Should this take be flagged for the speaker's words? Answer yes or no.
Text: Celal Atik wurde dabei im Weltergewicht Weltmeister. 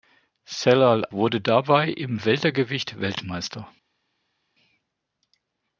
yes